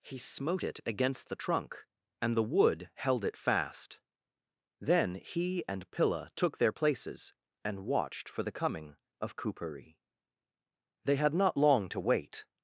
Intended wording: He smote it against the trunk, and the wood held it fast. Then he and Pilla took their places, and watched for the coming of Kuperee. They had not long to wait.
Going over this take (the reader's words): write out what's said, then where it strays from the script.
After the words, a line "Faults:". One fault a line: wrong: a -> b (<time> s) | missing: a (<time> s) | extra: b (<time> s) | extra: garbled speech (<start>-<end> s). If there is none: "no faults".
He smote it against the trunk, and the wood held it fast. Then he and Pilla took their places, and watched for the coming of Kuperee. They had not long to wait.
Faults:
no faults